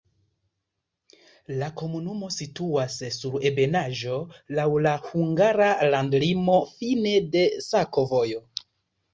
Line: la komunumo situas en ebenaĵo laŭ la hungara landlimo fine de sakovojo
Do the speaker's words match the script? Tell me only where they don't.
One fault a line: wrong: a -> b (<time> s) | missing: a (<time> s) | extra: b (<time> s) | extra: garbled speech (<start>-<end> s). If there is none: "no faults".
wrong: en -> sur (3.2 s)